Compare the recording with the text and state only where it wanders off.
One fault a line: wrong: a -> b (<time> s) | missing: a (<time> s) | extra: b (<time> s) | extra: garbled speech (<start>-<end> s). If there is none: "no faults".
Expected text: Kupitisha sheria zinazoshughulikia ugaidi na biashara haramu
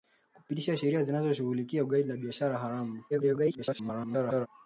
extra: garbled speech (3.1-4.5 s)